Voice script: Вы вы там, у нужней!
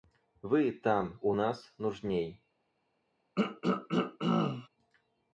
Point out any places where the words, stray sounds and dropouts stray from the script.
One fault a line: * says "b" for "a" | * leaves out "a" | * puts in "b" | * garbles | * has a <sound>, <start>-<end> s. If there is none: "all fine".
* leaves out "вы"
* puts in "нас"
* has a throat clearing, 3.4-4.7 s